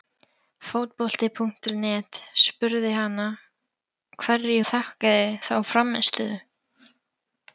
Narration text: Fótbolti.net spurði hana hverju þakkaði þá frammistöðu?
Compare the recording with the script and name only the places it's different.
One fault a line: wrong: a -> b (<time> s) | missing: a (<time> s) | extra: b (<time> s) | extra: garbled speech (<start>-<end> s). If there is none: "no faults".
no faults